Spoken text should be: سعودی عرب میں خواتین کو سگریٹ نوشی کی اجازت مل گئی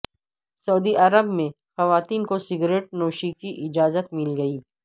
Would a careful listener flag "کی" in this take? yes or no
no